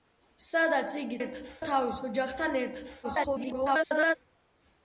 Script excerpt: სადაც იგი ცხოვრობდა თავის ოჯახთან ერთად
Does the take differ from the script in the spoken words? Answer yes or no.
yes